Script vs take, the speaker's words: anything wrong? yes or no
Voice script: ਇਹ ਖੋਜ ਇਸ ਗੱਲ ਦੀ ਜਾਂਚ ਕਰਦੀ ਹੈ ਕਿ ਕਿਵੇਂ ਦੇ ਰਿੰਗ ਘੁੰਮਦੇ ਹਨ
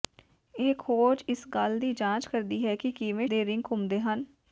no